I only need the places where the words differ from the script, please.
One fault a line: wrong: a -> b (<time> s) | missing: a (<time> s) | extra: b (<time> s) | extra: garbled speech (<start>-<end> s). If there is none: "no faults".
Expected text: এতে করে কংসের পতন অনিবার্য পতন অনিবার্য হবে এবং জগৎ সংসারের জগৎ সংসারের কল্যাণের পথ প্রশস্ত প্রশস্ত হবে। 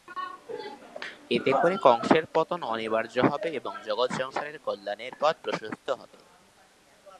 missing: পতন অনিবার্য (3.1 s)
missing: জগৎ সংসারের (4.6 s)
missing: প্রশস্ত (5.9 s)